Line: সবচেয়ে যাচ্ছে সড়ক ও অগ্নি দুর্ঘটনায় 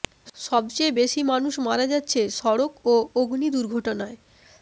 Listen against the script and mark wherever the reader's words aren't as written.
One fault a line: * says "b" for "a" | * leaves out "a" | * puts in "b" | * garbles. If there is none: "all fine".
* puts in "বেশি মানুষ মারা"